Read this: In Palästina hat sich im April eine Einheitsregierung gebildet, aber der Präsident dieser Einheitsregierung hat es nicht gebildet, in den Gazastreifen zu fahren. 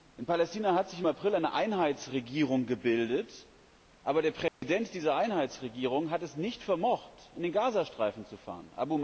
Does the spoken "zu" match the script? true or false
true